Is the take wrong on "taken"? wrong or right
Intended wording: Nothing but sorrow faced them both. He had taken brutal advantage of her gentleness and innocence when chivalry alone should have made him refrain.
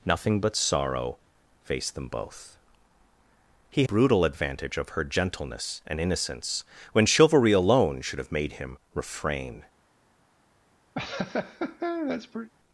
wrong